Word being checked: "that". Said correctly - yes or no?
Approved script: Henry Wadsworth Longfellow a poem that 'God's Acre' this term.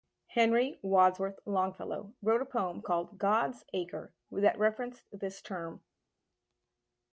no